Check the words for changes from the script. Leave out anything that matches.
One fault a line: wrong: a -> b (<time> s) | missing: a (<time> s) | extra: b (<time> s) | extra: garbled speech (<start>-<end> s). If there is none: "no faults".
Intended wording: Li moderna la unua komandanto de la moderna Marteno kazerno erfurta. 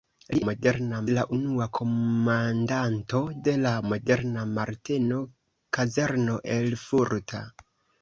no faults